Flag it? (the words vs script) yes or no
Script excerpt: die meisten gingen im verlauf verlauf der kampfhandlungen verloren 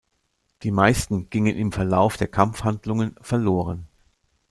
yes